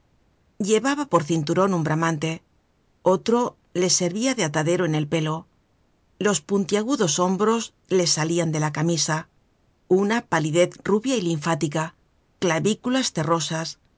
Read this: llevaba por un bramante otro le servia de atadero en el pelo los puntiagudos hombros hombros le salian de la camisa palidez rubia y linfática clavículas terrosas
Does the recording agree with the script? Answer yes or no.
no